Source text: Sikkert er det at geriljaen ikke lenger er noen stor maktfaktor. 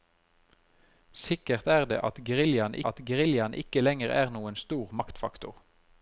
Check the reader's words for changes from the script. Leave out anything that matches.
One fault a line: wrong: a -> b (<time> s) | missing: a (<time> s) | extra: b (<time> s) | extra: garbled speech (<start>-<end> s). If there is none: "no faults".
extra: at geriljaen (2.9 s)